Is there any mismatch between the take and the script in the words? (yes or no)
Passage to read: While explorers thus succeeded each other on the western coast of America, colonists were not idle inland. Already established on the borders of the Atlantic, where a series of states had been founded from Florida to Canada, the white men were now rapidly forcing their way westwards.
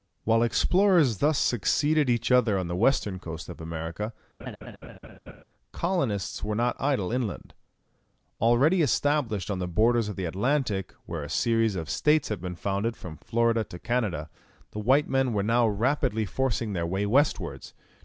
no